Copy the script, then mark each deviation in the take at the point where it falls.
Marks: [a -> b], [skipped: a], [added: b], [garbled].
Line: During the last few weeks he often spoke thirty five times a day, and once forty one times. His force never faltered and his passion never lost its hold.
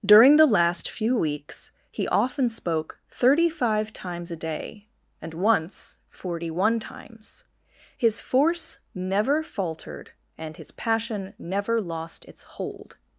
During the last few weeks he often spoke thirty five times a day, and once forty one times. His force never faltered and his passion never lost its hold.